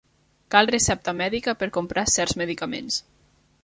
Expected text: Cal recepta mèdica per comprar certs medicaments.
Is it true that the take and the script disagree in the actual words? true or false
false